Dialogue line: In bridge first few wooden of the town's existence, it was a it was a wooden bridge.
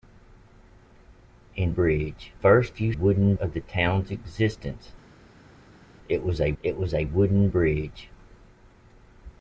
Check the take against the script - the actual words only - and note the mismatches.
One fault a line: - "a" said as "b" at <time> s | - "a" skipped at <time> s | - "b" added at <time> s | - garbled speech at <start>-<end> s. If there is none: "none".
none